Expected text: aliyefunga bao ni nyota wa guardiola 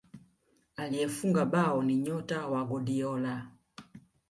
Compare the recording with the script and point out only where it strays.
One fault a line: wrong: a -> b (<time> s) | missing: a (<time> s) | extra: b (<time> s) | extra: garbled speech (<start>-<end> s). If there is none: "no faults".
no faults